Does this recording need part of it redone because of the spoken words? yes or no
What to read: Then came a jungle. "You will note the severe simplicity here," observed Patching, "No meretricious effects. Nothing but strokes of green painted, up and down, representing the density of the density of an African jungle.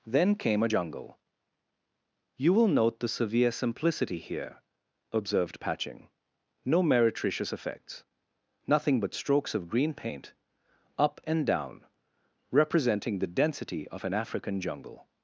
yes